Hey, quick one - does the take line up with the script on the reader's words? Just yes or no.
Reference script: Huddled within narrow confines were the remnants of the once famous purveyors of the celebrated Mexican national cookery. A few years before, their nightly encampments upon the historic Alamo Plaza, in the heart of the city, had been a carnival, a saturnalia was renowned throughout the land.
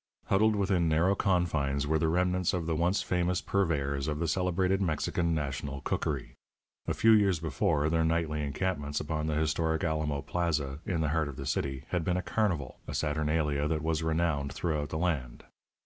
no